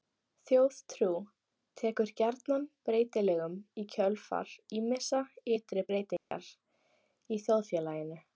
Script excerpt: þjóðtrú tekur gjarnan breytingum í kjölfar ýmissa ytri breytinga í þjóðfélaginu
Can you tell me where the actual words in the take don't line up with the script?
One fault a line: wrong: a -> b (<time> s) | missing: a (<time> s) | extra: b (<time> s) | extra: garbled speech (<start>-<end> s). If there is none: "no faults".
no faults